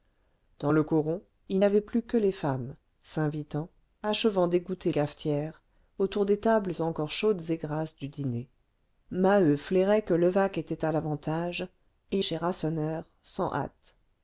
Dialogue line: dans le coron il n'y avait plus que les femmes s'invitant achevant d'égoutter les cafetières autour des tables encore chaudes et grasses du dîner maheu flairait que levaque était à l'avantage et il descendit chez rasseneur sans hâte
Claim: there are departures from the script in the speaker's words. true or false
true